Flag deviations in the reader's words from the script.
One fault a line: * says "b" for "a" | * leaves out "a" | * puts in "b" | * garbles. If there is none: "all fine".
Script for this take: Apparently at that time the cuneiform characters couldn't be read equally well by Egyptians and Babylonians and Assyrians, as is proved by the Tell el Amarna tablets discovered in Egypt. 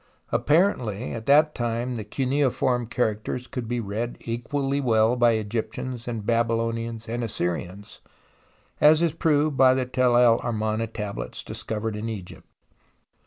* says "could" for "couldn't"